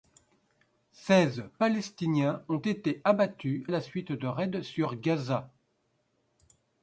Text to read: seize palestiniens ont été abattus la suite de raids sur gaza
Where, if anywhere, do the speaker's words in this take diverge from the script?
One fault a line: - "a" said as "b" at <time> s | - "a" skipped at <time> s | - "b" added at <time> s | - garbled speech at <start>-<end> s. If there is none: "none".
none